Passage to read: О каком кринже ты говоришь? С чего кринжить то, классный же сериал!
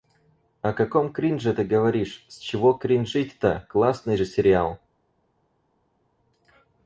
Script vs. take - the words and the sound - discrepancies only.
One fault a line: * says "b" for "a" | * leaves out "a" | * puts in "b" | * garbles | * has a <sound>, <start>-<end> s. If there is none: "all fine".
all fine